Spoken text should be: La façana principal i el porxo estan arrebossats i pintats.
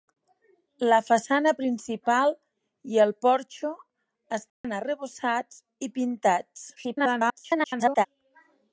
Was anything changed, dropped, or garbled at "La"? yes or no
no